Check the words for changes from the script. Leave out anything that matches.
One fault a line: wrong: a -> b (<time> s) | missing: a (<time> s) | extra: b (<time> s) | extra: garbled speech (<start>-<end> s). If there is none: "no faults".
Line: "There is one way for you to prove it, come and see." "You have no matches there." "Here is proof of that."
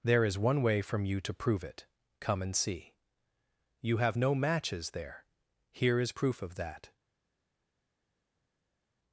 wrong: for -> from (0.8 s)